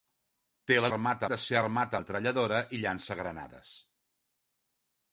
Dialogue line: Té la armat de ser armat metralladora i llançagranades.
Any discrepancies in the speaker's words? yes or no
no